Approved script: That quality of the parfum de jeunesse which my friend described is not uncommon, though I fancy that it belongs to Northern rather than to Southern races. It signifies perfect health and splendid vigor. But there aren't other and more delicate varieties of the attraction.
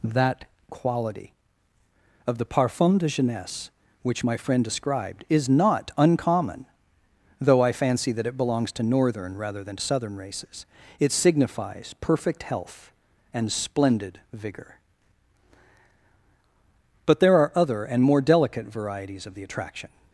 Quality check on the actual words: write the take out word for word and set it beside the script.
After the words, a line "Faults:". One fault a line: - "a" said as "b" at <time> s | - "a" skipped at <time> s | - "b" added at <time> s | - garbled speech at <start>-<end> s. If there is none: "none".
That quality of the parfum de jeunesse which my friend described is not uncommon, though I fancy that it belongs to Northern rather than to Southern races. It signifies perfect health and splendid vigor. But there are other and more delicate varieties of the attraction.
Faults:
- "aren't" said as "are" at 17.4 s